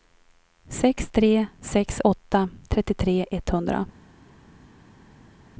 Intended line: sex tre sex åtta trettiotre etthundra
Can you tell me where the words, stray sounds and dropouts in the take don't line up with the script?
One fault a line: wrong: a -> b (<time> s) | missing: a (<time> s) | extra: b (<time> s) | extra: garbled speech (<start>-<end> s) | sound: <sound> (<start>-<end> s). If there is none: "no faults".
no faults